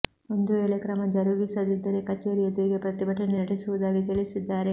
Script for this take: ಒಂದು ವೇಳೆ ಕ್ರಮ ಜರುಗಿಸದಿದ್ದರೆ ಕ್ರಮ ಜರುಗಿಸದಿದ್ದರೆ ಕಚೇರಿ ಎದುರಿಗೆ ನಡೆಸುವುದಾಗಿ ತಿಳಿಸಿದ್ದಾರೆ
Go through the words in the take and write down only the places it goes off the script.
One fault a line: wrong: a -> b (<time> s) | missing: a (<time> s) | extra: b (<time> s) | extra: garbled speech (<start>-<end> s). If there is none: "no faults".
missing: ಕ್ರಮ ಜರುಗಿಸದಿದ್ದರೆ (2.0 s)
extra: ಪ್ರತಿಭಟನೆ (2.8 s)